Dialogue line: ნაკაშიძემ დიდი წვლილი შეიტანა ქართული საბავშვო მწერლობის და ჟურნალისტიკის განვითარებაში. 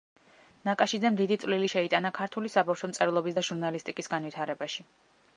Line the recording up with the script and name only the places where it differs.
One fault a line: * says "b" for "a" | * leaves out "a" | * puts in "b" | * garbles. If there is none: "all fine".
all fine